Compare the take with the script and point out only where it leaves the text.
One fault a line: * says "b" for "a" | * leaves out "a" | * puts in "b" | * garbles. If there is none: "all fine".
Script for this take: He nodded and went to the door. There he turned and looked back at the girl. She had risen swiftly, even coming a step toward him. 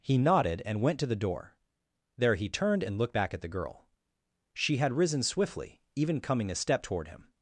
all fine